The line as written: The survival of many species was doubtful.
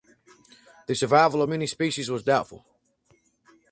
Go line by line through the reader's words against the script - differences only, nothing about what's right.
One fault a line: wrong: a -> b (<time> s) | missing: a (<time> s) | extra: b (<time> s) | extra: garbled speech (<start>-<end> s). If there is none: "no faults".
no faults